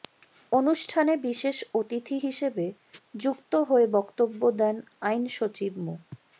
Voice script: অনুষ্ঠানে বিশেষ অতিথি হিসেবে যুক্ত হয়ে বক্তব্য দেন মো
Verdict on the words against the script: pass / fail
fail